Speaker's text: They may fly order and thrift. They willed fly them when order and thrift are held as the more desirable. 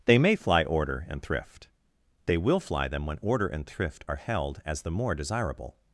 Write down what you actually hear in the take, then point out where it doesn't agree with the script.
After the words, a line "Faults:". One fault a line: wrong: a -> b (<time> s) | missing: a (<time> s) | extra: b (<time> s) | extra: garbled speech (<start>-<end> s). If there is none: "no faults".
They may fly order and thrift. They will fly them when order and thrift are held as the more desirable.
Faults:
wrong: willed -> will (2.4 s)